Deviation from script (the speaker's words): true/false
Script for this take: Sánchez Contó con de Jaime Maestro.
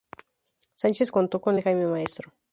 false